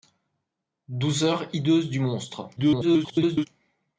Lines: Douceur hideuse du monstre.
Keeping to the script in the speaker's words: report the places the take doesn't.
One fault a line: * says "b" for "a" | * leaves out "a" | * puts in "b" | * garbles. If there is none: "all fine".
* garbles